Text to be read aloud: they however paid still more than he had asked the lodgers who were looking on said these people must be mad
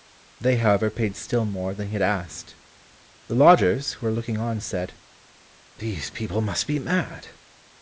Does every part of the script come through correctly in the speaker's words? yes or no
yes